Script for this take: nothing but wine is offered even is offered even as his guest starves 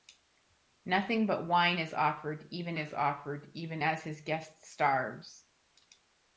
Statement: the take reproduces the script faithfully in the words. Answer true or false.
true